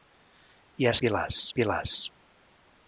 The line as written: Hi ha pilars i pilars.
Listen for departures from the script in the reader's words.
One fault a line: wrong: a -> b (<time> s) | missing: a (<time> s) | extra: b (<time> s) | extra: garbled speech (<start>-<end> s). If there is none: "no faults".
no faults